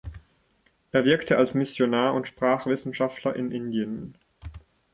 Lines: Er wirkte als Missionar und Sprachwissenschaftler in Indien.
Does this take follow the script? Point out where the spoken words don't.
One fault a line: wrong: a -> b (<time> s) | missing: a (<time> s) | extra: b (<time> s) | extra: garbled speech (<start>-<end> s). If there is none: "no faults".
no faults